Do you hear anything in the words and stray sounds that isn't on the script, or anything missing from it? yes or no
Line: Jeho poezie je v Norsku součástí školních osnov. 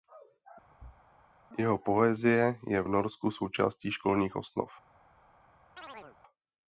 yes